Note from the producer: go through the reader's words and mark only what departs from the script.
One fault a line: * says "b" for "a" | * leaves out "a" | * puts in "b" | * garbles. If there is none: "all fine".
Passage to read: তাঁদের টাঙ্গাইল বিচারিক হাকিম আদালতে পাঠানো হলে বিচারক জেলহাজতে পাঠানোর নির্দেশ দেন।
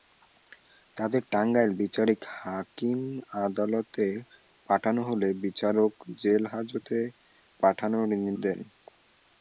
* leaves out "নির্দেশ"